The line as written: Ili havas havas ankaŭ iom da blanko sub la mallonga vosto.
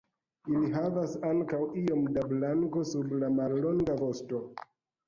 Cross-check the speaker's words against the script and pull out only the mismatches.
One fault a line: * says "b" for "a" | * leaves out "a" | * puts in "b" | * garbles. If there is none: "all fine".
* leaves out "havas"